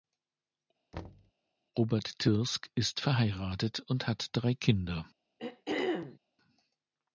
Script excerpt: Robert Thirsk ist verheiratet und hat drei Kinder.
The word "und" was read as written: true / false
true